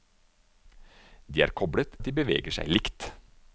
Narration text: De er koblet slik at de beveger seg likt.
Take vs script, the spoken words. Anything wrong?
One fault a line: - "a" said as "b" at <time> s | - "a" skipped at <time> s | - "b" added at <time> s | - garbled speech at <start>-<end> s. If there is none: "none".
- "slik" skipped at 2.0 s